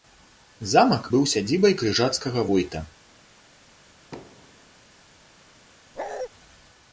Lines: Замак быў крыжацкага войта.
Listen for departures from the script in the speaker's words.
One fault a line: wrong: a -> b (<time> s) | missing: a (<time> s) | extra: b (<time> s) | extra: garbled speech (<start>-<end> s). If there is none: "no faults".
extra: сядзібай (1.3 s)